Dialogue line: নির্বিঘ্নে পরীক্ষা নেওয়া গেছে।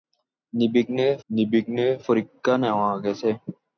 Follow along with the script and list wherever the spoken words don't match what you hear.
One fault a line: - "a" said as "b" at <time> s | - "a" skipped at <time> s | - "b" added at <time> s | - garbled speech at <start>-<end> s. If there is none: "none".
- "নির্বিঘ্নে" added at 1.3 s